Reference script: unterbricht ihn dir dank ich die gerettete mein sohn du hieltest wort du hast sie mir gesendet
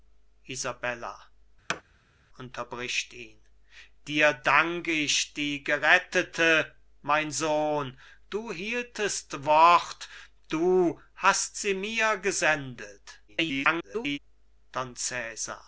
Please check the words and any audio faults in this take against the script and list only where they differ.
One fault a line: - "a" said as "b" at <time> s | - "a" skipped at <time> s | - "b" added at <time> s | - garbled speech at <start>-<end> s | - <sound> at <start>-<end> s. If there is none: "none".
- thud at 1.7-1.8 s
- garbled speech at 13.3-14.2 s